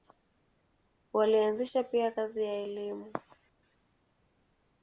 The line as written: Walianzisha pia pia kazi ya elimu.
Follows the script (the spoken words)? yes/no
no